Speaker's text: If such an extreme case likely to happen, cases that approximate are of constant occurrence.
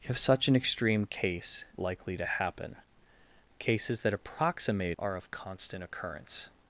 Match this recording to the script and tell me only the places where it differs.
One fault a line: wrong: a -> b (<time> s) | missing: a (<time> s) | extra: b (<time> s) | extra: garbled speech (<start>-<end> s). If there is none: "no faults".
no faults